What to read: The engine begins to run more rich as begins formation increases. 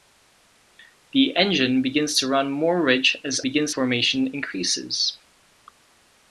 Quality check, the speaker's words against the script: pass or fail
pass